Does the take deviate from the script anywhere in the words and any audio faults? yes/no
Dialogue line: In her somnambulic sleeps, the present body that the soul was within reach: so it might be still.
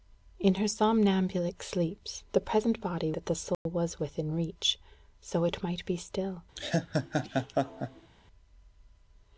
yes